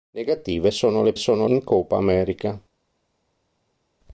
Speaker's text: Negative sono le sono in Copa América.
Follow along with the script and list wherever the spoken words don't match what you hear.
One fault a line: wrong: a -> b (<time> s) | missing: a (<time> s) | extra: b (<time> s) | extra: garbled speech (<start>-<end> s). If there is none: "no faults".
no faults